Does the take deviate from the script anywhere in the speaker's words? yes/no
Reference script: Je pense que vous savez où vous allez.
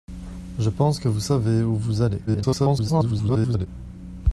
yes